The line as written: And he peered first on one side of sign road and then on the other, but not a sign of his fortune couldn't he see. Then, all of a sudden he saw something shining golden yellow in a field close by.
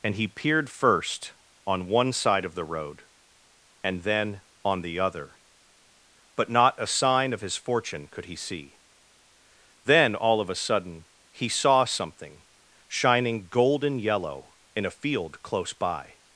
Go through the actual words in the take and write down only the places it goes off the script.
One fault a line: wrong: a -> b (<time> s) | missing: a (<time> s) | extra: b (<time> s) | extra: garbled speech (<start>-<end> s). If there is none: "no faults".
wrong: sign -> the (2.5 s)
wrong: couldn't -> could (8.1 s)